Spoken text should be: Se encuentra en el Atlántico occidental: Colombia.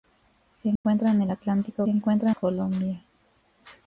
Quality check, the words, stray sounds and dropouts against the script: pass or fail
fail